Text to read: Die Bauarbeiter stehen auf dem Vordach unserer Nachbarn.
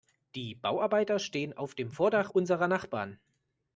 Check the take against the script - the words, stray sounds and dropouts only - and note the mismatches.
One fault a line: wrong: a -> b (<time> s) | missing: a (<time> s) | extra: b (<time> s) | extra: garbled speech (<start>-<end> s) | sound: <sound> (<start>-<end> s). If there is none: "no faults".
no faults